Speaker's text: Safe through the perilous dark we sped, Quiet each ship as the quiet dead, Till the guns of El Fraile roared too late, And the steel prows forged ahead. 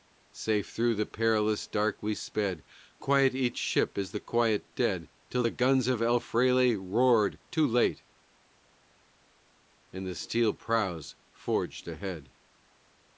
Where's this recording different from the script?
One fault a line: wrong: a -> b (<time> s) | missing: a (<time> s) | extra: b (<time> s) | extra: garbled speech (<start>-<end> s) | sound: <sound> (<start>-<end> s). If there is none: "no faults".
no faults